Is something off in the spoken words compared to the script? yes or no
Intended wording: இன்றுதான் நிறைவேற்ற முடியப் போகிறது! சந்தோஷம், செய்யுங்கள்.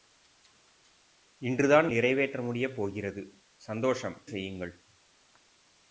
no